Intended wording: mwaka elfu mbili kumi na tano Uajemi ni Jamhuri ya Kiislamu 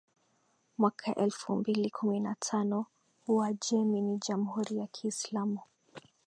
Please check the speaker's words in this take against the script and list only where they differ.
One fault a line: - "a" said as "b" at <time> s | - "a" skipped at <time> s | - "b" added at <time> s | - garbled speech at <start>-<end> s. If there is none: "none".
none